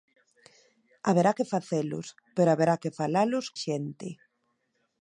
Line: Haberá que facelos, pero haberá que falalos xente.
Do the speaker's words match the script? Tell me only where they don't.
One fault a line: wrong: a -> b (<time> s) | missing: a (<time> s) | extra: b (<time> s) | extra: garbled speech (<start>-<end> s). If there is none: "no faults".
no faults